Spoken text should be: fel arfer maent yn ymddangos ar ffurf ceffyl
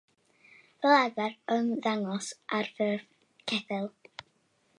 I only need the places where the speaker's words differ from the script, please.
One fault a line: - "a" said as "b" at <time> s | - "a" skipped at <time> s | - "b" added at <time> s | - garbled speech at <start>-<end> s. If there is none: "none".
- "maent" skipped at 1.4 s